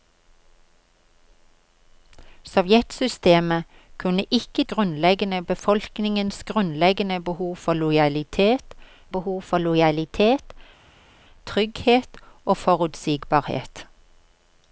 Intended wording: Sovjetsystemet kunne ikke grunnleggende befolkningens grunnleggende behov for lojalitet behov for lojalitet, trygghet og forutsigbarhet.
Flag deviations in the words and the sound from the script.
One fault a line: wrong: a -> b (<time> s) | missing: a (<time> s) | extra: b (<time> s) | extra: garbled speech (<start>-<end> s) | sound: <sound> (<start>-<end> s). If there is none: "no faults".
no faults